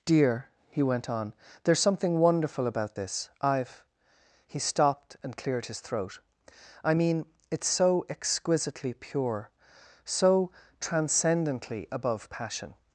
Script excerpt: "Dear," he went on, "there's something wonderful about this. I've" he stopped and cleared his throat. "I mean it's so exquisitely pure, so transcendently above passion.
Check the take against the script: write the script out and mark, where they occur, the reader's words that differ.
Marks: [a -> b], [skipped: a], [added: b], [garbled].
"Dear," he went on, "there's something wonderful about this. I've" he stopped and cleared his throat. "I mean it's so exquisitely pure, so transcendently above passion.